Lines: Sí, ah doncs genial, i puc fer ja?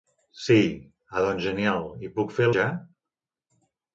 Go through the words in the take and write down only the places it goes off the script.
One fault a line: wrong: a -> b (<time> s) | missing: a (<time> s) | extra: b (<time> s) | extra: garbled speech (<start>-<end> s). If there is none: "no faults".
no faults